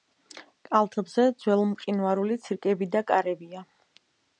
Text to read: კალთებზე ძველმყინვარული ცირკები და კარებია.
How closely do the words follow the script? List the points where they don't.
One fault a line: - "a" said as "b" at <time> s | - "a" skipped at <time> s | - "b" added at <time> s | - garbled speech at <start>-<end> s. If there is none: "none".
none